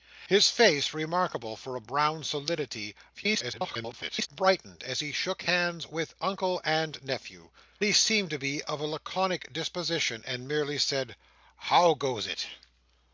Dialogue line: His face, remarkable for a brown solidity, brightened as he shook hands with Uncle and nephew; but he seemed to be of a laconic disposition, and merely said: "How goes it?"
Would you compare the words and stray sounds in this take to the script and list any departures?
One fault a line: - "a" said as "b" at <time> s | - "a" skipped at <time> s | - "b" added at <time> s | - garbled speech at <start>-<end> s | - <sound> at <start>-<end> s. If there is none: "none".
- garbled speech at 3.1-4.3 s
- "but" skipped at 7.5 s